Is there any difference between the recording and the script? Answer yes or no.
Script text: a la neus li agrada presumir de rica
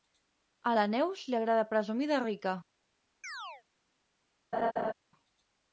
no